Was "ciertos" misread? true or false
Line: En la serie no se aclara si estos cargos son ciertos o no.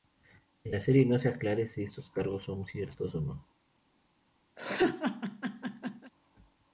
false